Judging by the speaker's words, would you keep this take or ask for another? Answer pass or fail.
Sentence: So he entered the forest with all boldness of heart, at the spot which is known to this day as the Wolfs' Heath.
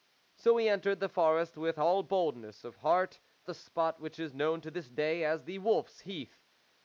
fail